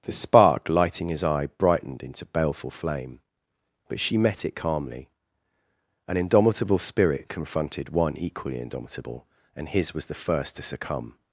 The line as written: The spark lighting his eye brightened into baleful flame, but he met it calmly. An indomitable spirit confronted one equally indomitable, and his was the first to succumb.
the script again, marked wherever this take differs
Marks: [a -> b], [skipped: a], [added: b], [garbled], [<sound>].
The spark lighting his eye brightened into baleful flame, but [he -> she] met it calmly. An indomitable spirit confronted one equally indomitable, and his was the first to succumb.